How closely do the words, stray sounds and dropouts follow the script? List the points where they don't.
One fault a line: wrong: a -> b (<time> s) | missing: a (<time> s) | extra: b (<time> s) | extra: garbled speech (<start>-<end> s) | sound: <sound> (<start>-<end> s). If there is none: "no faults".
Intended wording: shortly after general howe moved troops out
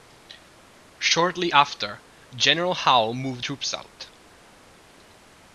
no faults